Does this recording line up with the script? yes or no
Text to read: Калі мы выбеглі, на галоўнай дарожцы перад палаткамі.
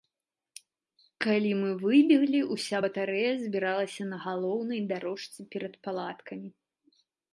no